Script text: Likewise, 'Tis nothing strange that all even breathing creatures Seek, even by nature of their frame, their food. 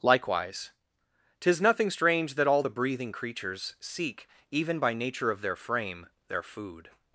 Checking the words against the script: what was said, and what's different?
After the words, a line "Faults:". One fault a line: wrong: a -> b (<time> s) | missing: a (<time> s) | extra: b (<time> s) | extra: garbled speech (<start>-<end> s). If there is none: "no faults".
Likewise, 'Tis nothing strange that all the breathing creatures Seek, even by nature of their frame, their food.
Faults:
wrong: even -> the (2.6 s)